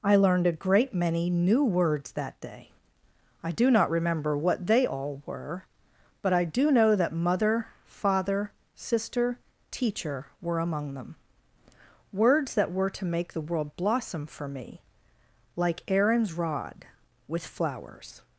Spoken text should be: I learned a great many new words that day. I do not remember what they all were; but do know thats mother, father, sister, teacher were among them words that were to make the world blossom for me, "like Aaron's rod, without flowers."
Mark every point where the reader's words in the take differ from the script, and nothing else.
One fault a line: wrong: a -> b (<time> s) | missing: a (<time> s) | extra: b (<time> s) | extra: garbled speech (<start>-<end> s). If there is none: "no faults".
extra: I (6.3 s)
wrong: thats -> that (7.0 s)
wrong: without -> with (17.3 s)